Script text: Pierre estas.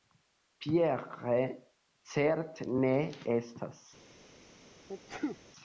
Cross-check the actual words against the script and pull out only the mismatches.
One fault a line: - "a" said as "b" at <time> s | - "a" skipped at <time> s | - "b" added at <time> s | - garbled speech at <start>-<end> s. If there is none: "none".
- "certe ne" added at 2.1 s